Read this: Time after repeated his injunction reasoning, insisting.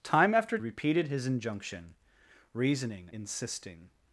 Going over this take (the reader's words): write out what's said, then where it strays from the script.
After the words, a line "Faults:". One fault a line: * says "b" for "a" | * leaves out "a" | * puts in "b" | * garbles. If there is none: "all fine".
Time after repeated his injunction reasoning, insisting.
Faults:
all fine